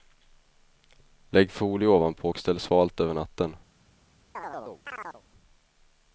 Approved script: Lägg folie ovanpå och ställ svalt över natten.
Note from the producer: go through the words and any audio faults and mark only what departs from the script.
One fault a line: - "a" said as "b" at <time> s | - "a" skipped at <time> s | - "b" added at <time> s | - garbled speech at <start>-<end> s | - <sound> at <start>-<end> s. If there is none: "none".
- chirp at 4.3-5.2 s